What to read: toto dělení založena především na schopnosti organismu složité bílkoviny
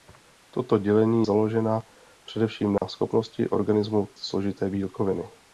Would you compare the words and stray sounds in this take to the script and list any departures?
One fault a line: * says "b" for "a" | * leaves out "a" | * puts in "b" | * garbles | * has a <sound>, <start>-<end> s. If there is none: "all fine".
* has a dropout, 2.8-2.8 s